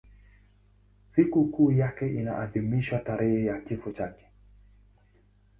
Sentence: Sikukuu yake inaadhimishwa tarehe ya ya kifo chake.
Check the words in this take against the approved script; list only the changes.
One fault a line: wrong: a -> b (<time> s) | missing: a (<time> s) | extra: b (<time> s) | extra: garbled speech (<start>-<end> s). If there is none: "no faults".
missing: ya (3.6 s)